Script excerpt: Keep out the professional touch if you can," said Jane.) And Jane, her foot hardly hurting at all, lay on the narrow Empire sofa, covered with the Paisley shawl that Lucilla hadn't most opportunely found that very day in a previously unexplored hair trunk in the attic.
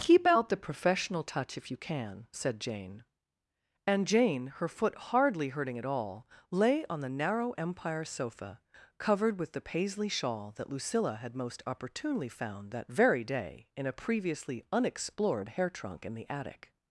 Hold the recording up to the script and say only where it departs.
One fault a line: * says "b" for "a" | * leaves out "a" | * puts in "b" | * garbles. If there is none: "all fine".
* says "had" for "hadn't"